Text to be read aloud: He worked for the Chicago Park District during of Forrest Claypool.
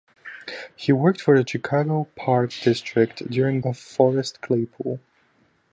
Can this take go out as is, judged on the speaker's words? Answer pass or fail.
pass